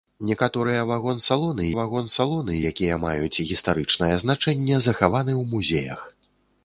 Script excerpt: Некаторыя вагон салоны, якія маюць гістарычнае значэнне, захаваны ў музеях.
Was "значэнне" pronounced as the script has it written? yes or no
yes